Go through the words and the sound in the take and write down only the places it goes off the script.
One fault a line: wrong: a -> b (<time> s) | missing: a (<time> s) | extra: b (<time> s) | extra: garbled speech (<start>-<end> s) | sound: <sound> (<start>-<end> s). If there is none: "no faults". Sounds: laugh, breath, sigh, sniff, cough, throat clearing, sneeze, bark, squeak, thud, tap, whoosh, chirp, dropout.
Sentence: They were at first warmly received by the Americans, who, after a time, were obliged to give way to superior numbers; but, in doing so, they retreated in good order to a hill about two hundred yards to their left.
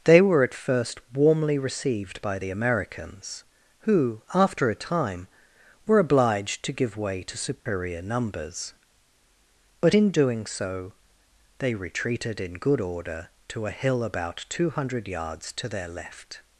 sound: dropout (7.6-7.7 s)